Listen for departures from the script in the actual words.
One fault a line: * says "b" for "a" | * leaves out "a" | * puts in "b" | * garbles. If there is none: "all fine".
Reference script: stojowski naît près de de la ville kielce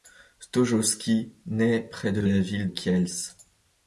all fine